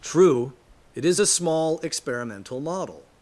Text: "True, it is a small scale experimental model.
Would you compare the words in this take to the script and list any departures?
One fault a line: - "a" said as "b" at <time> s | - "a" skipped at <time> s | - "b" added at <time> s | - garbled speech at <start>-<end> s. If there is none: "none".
- "scale" skipped at 1.8 s